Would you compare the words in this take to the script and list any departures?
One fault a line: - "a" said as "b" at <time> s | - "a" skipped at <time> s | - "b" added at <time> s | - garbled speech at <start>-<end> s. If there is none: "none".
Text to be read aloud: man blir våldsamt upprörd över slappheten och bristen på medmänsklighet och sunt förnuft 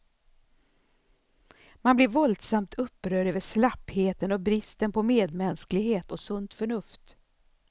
none